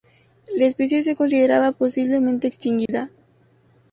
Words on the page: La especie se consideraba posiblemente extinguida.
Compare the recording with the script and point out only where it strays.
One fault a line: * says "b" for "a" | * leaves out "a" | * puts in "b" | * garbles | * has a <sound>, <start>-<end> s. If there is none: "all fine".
* has a dropout, 2.9-2.9 s